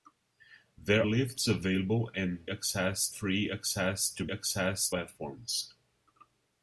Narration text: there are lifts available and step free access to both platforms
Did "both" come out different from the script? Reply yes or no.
yes